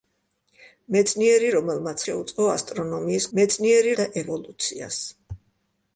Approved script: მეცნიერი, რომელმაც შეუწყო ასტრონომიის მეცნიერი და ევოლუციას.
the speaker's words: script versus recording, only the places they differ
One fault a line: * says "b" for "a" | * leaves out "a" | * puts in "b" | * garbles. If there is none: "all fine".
all fine